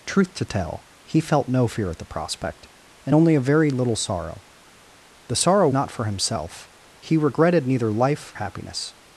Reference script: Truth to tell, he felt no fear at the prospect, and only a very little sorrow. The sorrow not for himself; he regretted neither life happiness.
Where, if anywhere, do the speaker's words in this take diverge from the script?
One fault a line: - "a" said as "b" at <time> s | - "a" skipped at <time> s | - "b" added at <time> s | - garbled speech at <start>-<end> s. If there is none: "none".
none